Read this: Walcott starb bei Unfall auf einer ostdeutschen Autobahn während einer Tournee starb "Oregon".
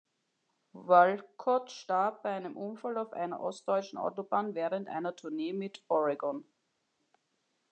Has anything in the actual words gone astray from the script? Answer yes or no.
yes